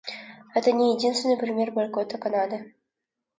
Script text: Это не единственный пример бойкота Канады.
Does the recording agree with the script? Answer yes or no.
yes